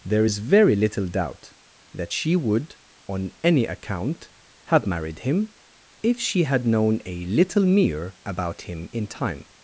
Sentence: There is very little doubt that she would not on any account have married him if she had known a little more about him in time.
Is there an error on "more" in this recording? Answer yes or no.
yes